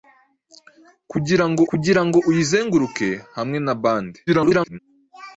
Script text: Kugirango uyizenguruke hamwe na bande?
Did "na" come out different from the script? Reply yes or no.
no